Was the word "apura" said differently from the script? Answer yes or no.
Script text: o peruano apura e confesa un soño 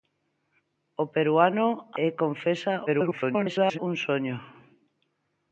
yes